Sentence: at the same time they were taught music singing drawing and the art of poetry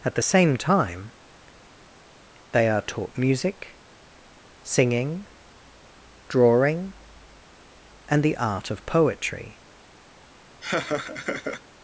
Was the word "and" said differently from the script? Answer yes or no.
no